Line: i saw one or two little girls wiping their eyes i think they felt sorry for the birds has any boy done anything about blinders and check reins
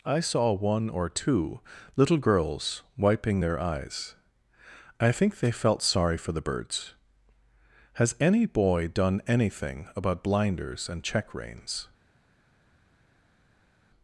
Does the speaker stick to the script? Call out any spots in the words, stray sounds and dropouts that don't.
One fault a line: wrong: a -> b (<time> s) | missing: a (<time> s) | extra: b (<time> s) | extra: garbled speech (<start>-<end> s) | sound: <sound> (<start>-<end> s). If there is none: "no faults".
no faults